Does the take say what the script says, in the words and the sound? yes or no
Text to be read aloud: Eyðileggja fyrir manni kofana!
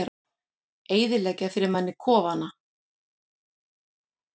yes